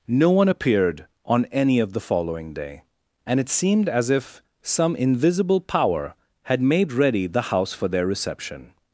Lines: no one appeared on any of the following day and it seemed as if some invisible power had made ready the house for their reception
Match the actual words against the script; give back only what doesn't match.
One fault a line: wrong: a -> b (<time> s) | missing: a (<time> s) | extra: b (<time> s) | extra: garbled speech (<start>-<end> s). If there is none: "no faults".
no faults